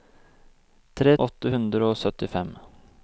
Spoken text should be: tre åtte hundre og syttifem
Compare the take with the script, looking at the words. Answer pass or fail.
pass